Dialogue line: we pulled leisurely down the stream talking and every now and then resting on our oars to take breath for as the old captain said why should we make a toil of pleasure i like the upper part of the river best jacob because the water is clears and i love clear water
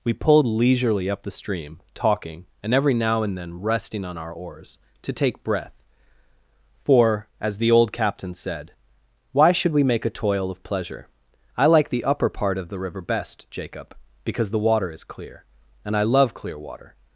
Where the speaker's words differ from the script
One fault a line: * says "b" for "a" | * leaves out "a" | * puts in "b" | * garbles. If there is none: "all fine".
* says "up" for "down"
* says "clear" for "clears"